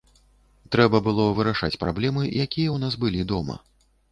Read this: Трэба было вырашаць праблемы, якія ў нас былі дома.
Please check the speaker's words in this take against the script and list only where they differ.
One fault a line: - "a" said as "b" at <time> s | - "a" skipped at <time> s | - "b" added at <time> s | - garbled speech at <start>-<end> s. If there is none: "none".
none